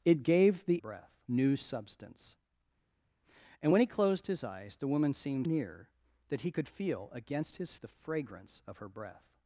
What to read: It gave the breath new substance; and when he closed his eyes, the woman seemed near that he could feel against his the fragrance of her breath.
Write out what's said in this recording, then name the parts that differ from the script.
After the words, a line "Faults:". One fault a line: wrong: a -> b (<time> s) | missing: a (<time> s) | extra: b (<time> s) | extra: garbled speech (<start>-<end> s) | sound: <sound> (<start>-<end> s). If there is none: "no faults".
It gave the breath new substance; and when he closed his eyes, the woman seemed near that he could feel against his the fragrance of her breath.
Faults:
no faults